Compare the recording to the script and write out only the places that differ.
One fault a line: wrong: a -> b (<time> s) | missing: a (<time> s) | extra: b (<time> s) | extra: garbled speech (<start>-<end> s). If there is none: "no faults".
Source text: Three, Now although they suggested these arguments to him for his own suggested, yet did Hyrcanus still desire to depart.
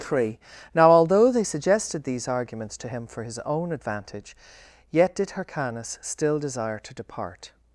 wrong: suggested -> advantage (3.7 s)